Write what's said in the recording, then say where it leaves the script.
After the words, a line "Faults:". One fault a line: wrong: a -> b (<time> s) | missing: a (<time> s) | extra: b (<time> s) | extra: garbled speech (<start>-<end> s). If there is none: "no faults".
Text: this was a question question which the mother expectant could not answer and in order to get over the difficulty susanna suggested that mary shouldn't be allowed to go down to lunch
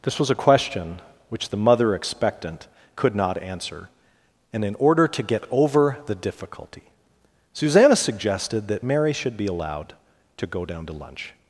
this was a question which the mother expectant could not answer and in order to get over the difficulty susanna suggested that mary should be allowed to go down to lunch
Faults:
missing: question (1.0 s)
wrong: shouldn't -> should (9.1 s)